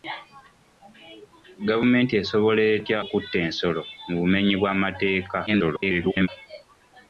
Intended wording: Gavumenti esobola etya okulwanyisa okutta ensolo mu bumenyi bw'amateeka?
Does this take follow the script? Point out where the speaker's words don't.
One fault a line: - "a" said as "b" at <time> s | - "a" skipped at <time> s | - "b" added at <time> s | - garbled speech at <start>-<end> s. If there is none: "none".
- "okulwanyisa" skipped at 3.0 s
- garbled speech at 5.5-6.3 s